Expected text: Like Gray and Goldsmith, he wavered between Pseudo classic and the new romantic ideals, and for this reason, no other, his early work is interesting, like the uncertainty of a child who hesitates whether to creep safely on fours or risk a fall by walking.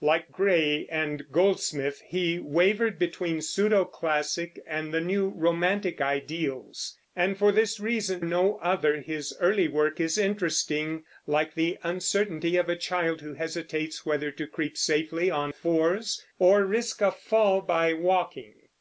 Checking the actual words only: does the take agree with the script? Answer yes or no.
yes